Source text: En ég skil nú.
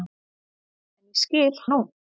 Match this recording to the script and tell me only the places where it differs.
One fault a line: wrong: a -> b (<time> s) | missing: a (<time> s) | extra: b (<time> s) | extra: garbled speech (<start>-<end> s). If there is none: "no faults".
no faults